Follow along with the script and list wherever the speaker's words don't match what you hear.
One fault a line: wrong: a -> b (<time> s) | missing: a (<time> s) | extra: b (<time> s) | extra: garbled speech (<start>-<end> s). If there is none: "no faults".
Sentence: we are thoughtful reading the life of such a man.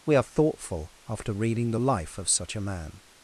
extra: after (1.1 s)